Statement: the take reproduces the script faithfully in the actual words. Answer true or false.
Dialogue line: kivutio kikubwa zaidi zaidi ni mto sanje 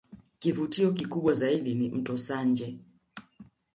false